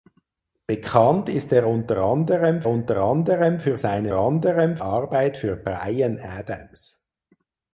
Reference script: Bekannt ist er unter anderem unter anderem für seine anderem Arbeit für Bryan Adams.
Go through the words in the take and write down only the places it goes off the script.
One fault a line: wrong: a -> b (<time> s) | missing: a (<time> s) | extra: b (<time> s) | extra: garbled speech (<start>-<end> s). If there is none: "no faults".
no faults